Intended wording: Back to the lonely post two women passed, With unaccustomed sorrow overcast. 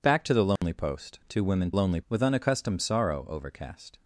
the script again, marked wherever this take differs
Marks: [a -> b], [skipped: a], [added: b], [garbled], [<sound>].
Back to the lonely [dropout] post two women [passed, -> lonely] With unaccustomed sorrow overcast.